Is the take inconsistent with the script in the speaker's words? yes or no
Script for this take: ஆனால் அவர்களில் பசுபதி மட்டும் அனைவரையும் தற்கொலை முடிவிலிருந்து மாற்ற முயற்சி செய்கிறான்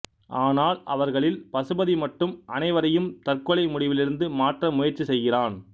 no